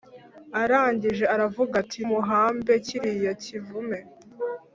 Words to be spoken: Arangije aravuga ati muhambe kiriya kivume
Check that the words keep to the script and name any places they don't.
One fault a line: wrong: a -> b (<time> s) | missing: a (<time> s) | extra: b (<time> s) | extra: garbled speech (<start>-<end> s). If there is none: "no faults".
no faults